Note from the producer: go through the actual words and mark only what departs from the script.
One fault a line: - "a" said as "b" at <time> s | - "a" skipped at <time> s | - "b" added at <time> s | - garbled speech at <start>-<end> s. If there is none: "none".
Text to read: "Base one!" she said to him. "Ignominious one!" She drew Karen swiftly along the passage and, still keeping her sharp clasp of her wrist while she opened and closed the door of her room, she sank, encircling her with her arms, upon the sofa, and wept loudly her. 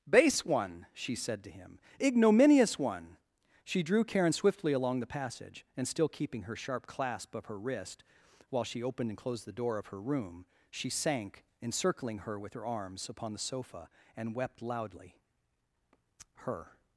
none